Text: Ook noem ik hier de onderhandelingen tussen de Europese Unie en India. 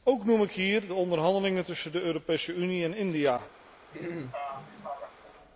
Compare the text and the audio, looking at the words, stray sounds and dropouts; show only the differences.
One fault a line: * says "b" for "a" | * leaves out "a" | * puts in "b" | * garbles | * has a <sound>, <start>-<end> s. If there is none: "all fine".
* has a throat clearing, 3.9-5.2 s